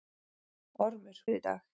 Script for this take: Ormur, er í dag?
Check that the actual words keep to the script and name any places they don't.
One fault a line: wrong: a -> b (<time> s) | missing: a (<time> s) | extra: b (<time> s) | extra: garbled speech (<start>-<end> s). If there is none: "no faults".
no faults